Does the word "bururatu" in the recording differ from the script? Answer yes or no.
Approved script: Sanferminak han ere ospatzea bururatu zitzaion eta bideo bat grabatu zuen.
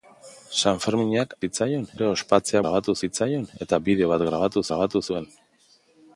yes